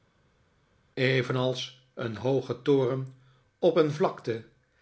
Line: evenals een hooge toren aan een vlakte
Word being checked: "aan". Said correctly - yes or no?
no